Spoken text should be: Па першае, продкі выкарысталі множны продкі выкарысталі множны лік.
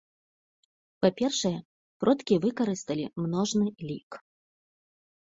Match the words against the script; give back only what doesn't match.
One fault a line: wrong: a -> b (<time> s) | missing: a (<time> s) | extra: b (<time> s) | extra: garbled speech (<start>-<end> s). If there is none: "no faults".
missing: продкі выкарысталі множны (3.7 s)